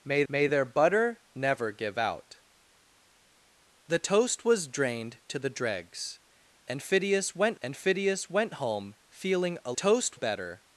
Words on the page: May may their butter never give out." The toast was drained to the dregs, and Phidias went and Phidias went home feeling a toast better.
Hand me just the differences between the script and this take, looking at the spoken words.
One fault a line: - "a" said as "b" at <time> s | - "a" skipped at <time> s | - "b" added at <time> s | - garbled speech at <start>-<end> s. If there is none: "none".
none